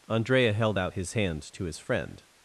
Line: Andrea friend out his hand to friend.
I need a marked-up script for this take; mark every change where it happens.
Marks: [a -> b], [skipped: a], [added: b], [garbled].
Andrea [friend -> held] out his hand to [added: his] friend.